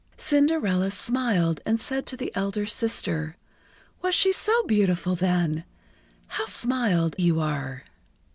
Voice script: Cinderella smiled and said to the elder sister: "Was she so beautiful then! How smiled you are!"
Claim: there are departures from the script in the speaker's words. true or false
false